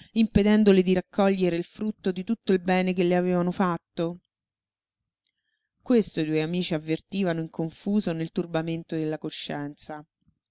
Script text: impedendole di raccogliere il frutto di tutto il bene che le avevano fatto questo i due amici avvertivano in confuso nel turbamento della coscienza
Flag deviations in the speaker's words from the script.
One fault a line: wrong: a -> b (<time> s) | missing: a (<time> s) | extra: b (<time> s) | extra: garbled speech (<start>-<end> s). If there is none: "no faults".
no faults